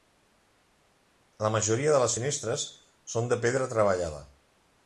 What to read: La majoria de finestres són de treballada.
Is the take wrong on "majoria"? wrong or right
right